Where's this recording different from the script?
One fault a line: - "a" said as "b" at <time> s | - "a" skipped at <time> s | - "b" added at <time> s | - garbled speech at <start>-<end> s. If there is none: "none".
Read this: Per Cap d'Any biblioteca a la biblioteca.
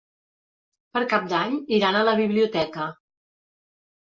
- "biblioteca" said as "iran" at 1.8 s